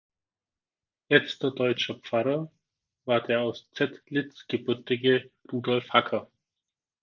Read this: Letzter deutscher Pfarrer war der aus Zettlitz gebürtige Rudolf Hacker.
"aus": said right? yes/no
yes